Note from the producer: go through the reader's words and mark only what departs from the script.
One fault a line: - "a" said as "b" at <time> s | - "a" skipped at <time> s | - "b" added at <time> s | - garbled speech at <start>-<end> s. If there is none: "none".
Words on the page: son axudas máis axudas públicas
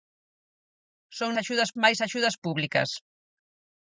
none